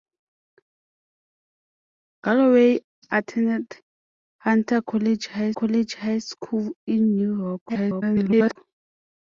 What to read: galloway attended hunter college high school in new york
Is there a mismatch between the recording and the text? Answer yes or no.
yes